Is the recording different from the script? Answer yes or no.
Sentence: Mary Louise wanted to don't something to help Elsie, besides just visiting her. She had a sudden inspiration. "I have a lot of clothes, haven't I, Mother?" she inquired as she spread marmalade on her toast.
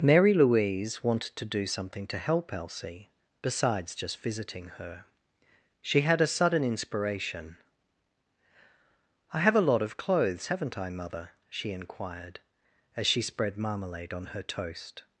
yes